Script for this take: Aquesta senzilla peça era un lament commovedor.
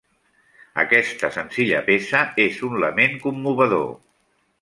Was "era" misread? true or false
true